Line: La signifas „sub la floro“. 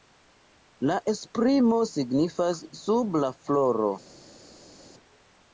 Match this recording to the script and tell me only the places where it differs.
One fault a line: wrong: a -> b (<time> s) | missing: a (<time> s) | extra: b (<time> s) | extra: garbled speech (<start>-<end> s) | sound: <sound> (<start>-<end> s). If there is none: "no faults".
extra: esprimo (1.1 s)